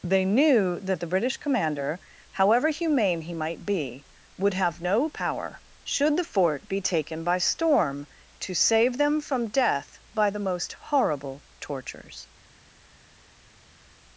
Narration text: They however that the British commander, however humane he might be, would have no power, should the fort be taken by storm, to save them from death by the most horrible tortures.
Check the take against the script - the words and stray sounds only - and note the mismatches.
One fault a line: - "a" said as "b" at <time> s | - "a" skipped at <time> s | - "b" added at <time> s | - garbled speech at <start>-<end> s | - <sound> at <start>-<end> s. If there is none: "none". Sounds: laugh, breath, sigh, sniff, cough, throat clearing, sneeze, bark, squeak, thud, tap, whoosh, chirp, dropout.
- "however" said as "knew" at 0.2 s